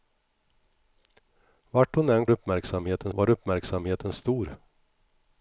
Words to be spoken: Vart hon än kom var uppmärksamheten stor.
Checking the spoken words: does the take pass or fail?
fail